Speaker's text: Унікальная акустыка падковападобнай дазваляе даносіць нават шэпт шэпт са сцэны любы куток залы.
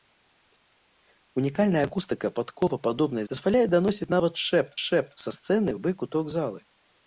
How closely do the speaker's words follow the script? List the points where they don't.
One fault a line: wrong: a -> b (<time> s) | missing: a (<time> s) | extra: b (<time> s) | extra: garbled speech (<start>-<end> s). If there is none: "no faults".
no faults